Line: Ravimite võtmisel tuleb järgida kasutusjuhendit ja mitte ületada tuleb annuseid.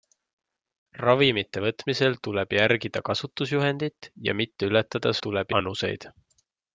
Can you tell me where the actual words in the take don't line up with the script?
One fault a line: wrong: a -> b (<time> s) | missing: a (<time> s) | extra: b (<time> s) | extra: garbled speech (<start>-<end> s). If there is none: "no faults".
no faults